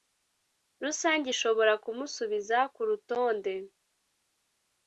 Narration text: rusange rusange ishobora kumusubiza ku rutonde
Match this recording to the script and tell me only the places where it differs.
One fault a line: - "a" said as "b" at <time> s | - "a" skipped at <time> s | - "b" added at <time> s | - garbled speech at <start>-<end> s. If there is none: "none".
- "rusange" skipped at 1.3 s